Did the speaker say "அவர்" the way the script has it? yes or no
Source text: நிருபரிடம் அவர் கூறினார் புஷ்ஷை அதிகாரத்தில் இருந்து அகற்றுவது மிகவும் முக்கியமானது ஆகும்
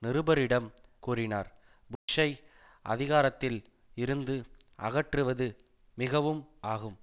no